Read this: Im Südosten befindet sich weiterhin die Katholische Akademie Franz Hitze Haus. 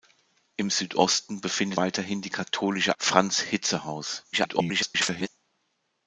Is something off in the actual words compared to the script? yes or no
yes